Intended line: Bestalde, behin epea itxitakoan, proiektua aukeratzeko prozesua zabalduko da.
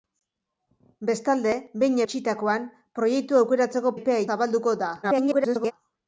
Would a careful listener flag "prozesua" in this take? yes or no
yes